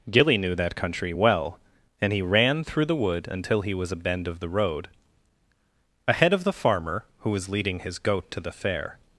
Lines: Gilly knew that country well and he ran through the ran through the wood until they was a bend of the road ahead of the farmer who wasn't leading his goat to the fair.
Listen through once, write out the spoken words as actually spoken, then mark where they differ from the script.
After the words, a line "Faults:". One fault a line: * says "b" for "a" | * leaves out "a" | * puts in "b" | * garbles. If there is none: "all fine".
Gilly knew that country well and he ran through the wood until he was a bend of the road ahead of the farmer who was leading his goat to the fair.
Faults:
* leaves out "ran through the"
* says "he" for "they"
* says "was" for "wasn't"